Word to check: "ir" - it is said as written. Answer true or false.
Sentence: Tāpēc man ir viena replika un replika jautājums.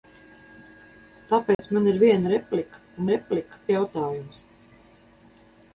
true